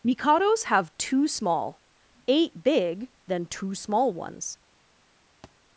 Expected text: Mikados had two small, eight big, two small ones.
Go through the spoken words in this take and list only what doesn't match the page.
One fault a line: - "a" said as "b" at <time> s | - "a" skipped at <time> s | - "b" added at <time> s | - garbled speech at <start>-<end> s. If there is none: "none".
- "had" said as "have" at 0.6 s
- "then" added at 3.3 s